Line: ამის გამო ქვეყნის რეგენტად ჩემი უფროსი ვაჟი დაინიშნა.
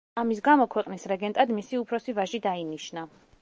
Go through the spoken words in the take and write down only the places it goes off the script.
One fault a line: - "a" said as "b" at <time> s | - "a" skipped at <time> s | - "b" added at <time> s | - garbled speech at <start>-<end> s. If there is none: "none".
- "ჩემი" said as "მისი" at 1.6 s